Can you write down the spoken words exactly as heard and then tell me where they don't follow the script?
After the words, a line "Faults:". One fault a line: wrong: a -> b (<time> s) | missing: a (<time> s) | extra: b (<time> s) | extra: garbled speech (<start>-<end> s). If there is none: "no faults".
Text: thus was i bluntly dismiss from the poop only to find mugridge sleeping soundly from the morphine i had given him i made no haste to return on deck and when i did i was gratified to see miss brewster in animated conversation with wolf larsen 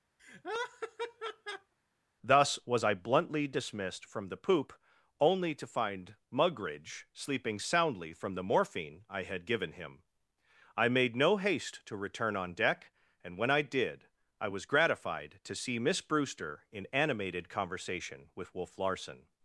thus was i bluntly dismissed from the poop only to find mugridge sleeping soundly from the morphine i had given him i made no haste to return on deck and when i did i was gratified to see miss brewster in animated conversation with wolf larsen
Faults:
wrong: dismiss -> dismissed (3.5 s)